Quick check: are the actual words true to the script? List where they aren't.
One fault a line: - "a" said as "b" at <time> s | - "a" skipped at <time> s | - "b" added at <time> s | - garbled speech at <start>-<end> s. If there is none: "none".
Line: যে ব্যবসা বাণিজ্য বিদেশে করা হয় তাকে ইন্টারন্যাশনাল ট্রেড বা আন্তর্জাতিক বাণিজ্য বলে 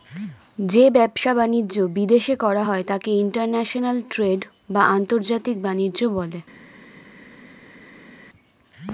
none